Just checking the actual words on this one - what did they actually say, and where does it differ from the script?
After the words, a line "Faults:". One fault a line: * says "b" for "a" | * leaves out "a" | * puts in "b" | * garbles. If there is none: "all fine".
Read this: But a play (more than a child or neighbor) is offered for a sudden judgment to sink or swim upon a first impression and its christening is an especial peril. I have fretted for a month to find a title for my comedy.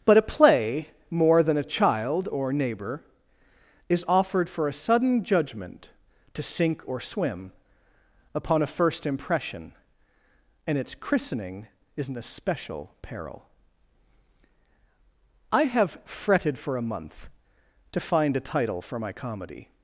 But a play (more than a child or neighbor) is offered for a sudden judgment to sink or swim upon a first impression and its christening is an especial peril. I have fretted for a month to find a title for my comedy.
Faults:
all fine